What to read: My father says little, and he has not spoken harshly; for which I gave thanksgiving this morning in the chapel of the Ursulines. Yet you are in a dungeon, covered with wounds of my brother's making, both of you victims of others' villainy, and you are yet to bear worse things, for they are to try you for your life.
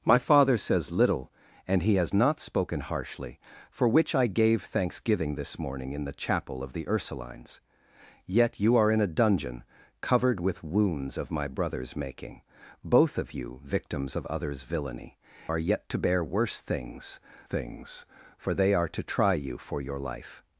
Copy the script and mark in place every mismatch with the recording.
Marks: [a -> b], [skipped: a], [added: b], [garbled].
My father says little, and he has not spoken harshly; for which I gave thanksgiving this morning in the chapel of the Ursulines. Yet you are in a dungeon, covered with wounds of my brother's making, both of you victims of others' villainy, [skipped: and you] are yet to bear worse things, [added: things] for they are to try you for your life.